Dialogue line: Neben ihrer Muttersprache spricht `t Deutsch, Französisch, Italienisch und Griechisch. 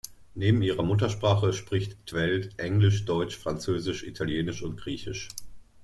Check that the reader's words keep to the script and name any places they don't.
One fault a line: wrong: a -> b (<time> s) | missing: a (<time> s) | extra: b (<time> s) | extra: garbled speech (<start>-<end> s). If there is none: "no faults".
extra: Veld Englisch (2.1 s)